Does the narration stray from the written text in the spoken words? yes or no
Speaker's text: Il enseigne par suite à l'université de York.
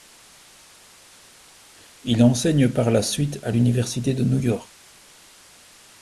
yes